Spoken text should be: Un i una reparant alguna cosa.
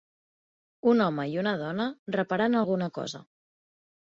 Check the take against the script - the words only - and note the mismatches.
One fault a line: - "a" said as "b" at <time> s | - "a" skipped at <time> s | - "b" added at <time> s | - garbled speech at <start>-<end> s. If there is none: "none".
- "home" added at 1.1 s
- "dona" added at 1.6 s